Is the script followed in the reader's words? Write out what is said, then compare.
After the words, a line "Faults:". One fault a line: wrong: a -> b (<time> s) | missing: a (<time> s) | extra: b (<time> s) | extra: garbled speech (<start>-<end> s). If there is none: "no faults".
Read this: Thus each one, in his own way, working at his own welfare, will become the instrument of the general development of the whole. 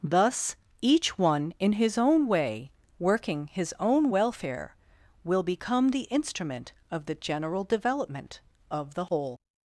Thus each one, in his own way, working his own welfare, will become the instrument of the general development of the whole.
Faults:
missing: at (3.5 s)